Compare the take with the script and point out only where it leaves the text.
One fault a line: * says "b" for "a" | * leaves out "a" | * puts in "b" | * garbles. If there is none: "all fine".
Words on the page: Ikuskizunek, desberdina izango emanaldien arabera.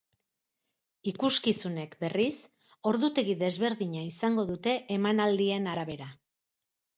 * puts in "berriz ordutegi"
* puts in "dute"